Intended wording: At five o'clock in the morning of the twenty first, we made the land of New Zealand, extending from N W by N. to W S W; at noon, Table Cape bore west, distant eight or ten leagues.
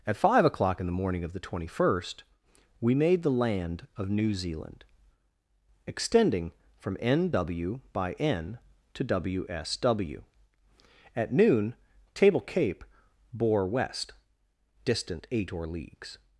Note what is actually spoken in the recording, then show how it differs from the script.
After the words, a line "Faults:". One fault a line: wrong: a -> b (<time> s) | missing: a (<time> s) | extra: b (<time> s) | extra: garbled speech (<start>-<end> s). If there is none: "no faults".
At five o'clock in the morning of the twenty first, we made the land of New Zealand, extending from N W by N. to W S W; at noon, Table Cape bore west, distant eight or leagues.
Faults:
missing: ten (15.7 s)